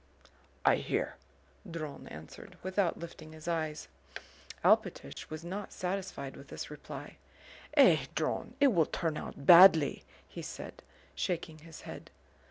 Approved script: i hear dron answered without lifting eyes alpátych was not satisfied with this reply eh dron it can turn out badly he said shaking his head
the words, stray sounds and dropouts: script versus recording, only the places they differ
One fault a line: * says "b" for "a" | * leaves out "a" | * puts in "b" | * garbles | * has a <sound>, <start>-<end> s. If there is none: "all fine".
* puts in "his"
* has a dropout, 5.1-5.2 s
* says "will" for "can"